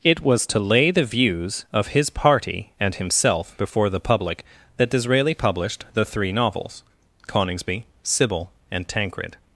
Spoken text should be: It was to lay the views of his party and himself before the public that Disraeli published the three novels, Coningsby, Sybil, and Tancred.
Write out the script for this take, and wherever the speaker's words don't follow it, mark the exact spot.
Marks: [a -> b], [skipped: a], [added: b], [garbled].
It was to lay the views of his party and himself before the public that Disraeli published the three novels, Coningsby, Sybil, and Tancred.